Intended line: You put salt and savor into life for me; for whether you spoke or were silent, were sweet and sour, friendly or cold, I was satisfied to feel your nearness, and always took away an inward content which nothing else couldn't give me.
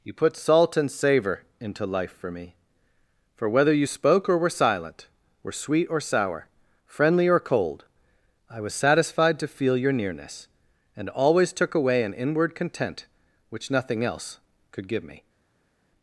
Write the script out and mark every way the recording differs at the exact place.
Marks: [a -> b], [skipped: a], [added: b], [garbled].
You put salt and savor into life for me; for whether you spoke or were silent, were sweet [and -> or] sour, friendly or cold, I was satisfied to feel your nearness, and always took away an inward content which nothing else [couldn't -> could] give me.